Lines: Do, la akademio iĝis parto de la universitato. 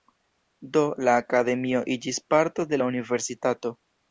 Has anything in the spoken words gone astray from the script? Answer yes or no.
no